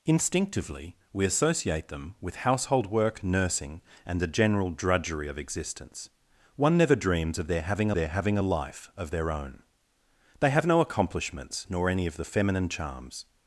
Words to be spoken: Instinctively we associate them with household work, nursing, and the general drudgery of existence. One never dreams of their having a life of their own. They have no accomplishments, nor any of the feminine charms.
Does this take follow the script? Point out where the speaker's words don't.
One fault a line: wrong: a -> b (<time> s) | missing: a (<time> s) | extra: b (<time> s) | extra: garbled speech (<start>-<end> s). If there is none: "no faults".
extra: their having (7.9 s)